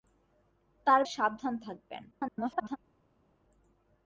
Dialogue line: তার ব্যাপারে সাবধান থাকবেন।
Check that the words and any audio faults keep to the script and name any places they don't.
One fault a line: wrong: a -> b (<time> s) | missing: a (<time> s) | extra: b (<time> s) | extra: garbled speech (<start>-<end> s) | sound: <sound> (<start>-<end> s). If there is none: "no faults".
missing: ব্যাপারে (1.0 s)
extra: garbled speech (2.1-2.8 s)